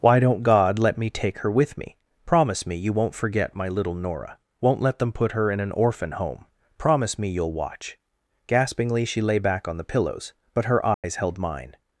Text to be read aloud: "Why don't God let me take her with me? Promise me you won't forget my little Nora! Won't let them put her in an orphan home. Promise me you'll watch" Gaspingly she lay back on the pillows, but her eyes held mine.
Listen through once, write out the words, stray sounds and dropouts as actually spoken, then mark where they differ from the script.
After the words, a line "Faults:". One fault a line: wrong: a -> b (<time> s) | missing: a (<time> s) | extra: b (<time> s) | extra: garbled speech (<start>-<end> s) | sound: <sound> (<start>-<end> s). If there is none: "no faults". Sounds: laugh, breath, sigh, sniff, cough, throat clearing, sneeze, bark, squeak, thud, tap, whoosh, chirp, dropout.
"Why don't God let me take her with me? Promise me you won't forget my little Nora! Won't let them put her in an orphan home. Promise me you'll watch" Gaspingly she lay back on the pillows, but her eyes held mine.
Faults:
sound: dropout (10.9-11.0 s)